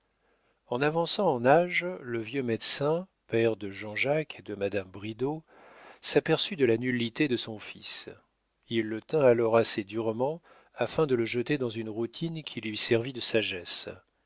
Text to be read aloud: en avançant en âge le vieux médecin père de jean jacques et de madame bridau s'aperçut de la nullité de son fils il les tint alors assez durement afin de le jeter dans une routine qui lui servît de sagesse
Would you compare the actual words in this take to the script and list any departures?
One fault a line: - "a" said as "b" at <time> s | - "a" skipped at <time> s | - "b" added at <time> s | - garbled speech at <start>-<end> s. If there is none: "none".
- "les" said as "le" at 8.9 s